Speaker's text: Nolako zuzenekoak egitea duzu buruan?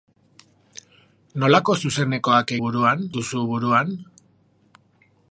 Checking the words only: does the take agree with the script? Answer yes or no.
no